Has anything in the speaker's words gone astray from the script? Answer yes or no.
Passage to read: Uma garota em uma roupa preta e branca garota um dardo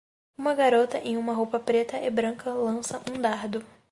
yes